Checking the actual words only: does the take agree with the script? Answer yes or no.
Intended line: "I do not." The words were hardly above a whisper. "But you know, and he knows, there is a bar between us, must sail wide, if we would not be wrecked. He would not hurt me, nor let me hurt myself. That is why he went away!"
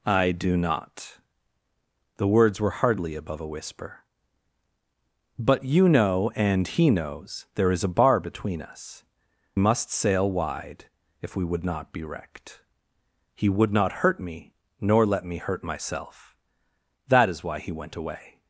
yes